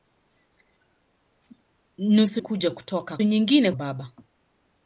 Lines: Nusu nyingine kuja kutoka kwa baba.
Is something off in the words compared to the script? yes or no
yes